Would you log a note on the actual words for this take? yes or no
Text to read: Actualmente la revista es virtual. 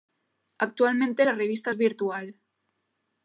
no